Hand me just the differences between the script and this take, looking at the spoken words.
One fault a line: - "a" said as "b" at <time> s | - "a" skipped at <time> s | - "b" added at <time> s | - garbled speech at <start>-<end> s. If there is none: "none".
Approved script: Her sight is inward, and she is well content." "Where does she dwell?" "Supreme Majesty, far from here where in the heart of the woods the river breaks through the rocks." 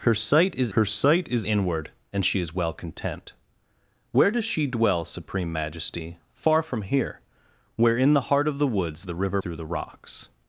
- "her sight is" added at 0.7 s
- "breaks" skipped at 9.4 s